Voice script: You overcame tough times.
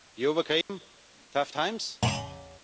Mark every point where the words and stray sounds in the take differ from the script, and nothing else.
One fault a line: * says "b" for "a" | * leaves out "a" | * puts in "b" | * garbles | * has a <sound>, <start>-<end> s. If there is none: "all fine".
* has a dropout, 0.6-0.7 s
* has a thud, 2.0-2.6 s